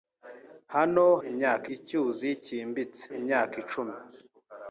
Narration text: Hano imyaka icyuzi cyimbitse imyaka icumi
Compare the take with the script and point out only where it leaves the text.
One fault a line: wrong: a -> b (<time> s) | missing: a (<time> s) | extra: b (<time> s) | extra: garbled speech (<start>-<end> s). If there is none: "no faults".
no faults